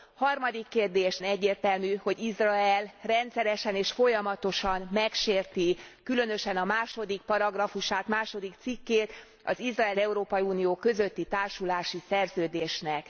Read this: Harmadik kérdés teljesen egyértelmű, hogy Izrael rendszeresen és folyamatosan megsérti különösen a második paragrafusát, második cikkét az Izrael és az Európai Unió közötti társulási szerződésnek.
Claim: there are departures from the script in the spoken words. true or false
true